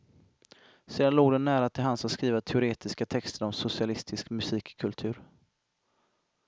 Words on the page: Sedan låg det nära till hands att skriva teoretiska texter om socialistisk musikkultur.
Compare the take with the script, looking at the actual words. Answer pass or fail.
pass